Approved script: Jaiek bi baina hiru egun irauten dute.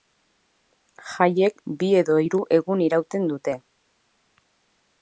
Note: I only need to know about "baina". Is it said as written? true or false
false